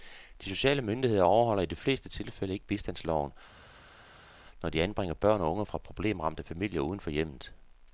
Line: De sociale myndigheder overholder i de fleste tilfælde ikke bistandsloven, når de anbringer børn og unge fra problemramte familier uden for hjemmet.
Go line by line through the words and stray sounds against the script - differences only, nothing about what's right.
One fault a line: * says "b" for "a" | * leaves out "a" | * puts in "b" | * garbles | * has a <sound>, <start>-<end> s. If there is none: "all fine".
all fine